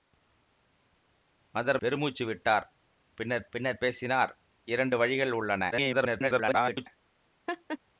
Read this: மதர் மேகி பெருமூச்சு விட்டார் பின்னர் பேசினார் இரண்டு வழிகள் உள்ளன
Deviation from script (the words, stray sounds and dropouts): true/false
true